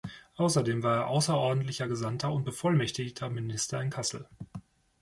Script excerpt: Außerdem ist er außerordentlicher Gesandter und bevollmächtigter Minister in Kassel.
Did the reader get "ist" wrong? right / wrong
wrong